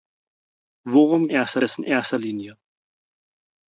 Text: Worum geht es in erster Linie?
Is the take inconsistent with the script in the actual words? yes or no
yes